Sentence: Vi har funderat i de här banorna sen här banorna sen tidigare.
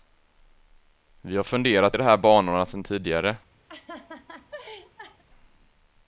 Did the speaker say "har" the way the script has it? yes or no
yes